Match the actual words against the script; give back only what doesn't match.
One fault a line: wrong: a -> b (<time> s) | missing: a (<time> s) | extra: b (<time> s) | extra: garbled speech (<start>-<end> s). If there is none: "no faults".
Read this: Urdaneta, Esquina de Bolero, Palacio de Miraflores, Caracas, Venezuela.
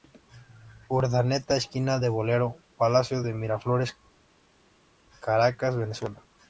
no faults